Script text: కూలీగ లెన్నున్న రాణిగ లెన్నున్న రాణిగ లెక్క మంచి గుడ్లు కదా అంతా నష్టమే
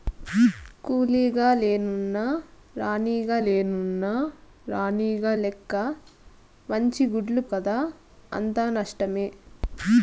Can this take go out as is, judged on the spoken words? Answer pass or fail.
pass